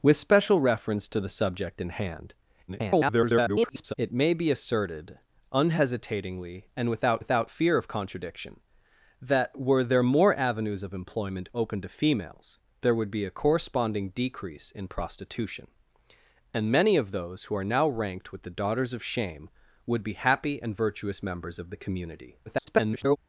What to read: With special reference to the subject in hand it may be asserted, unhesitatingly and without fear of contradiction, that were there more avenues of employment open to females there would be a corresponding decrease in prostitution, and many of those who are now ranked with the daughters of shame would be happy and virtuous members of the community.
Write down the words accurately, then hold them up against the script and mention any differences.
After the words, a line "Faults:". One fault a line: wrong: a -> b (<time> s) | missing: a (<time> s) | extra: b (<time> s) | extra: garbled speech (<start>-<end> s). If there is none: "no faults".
With special reference to the subject in hand [garbled] it may be asserted, unhesitatingly and without without fear of contradiction, that were there more avenues of employment open to females there would be a corresponding decrease in prostitution, and many of those who are now ranked with the daughters of shame would be happy and virtuous members of the community. [garbled]
Faults:
extra: garbled speech (2.7-3.9 s)
extra: without (7.2 s)
extra: garbled speech (22.5-23.2 s)